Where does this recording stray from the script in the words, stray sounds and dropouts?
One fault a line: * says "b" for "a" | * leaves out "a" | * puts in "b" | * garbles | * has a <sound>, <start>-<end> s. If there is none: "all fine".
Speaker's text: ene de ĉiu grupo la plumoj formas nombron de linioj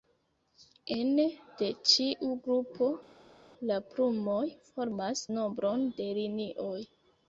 all fine